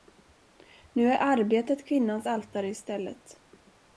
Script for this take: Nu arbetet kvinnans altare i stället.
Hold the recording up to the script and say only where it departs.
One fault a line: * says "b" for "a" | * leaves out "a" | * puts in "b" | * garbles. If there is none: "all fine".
* puts in "är"